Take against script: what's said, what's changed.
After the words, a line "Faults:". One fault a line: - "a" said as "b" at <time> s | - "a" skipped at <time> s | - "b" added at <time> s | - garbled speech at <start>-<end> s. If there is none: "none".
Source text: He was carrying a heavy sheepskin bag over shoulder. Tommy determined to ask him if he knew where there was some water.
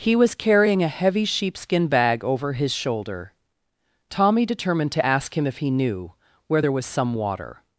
He was carrying a heavy sheepskin bag over his shoulder. Tommy determined to ask him if he knew where there was some water.
Faults:
- "his" added at 2.5 s